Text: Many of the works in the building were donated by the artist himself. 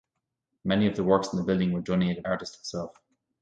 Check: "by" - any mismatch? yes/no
yes